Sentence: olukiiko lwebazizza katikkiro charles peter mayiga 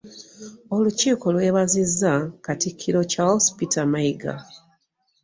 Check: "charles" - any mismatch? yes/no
no